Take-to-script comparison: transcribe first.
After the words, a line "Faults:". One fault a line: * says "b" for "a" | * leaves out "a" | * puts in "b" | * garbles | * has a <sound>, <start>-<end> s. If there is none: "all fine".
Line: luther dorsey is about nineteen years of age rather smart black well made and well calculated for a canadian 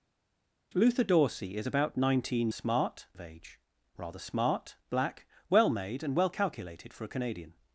luther dorsey is about nineteen smart of age rather smart black well made and well calculated for a canadian
Faults:
* says "smart" for "years"